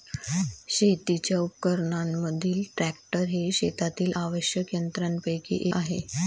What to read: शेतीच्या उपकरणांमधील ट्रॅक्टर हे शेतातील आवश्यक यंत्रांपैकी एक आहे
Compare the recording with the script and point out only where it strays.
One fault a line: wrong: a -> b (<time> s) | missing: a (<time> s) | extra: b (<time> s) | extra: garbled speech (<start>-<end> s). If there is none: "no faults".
missing: एक (5.6 s)